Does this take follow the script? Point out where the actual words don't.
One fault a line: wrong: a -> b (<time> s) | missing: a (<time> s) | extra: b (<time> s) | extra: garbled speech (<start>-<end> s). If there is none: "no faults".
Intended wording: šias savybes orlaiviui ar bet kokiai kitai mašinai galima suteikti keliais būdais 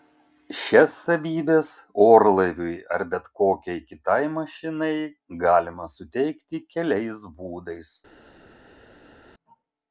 no faults